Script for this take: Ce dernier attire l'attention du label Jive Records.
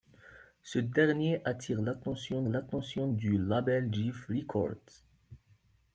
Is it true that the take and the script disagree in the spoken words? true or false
true